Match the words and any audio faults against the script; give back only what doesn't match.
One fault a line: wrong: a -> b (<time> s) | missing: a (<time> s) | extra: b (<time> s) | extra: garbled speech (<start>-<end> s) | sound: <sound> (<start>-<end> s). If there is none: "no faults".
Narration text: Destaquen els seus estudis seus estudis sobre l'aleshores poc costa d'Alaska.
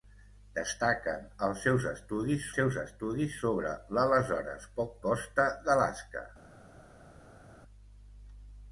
no faults